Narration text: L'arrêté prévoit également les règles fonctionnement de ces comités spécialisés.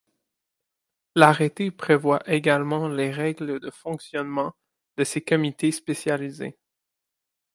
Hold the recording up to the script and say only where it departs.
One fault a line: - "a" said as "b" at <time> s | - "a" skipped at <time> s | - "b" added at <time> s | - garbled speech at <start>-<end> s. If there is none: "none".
- "de" added at 3.6 s